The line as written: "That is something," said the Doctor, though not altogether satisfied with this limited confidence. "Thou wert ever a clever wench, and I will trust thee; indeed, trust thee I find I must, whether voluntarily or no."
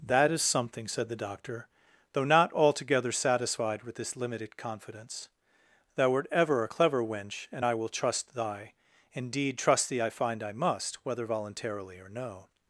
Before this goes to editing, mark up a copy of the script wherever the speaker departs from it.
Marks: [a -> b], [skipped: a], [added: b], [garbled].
"That is something," said the Doctor, though not altogether satisfied with this limited confidence. "Thou wert ever a clever wench, and I will trust [thee; -> thy] indeed, trust thee I find I must, whether voluntarily or no."